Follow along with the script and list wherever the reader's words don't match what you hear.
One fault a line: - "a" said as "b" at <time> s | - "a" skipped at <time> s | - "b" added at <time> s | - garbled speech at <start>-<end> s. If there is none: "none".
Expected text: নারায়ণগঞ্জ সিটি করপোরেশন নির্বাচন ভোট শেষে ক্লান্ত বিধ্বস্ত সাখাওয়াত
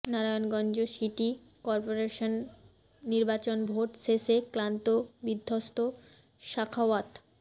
none